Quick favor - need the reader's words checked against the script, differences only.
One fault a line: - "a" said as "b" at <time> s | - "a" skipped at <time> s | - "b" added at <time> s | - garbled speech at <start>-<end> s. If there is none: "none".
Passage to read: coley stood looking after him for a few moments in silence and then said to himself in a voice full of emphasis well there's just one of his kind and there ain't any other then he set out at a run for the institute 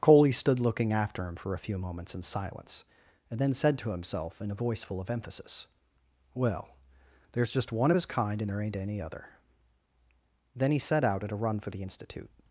none